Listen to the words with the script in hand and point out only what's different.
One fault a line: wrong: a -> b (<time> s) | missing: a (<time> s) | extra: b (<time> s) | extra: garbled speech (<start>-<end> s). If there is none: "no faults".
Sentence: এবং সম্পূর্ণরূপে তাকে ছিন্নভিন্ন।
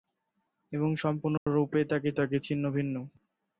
extra: তাকে (2.1 s)